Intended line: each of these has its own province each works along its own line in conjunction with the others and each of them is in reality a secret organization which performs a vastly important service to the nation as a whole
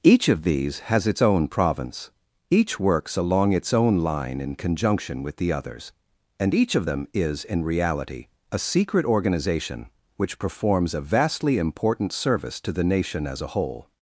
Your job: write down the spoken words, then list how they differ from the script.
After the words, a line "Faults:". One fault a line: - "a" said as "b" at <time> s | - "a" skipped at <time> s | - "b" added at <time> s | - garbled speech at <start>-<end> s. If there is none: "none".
each of these has its own province each works along its own line in conjunction with the others and each of them is in reality a secret organization which performs a vastly important service to the nation as a whole
Faults:
none